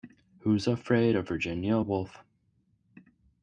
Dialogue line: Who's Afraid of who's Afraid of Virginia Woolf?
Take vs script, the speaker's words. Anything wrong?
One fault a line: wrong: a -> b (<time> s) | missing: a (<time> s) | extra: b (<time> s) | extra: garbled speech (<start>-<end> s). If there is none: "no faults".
missing: who's Afraid of (1.3 s)